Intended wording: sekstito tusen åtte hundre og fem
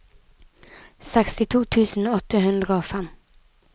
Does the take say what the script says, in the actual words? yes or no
yes